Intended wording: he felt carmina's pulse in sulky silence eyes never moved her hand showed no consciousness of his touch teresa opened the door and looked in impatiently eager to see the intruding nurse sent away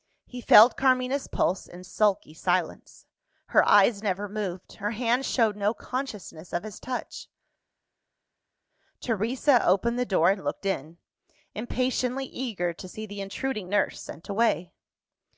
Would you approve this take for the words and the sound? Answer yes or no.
no